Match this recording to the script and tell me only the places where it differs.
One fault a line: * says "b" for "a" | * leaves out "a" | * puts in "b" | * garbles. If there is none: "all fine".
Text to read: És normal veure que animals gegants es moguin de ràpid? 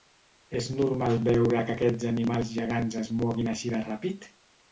* puts in "aquests"
* puts in "així"